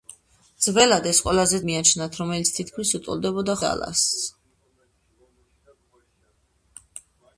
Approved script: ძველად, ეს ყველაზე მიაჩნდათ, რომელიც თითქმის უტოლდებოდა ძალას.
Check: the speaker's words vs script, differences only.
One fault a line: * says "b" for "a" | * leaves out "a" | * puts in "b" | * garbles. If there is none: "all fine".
all fine